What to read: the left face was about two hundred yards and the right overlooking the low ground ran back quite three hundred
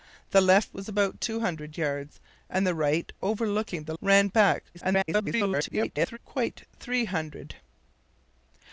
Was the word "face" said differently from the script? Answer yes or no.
yes